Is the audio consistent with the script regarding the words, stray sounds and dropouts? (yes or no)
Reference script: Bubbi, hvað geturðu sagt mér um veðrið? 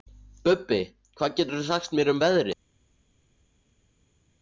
yes